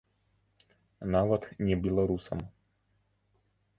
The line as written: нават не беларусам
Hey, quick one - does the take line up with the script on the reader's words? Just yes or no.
yes